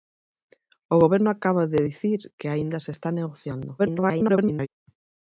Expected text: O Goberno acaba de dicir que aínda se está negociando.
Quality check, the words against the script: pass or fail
fail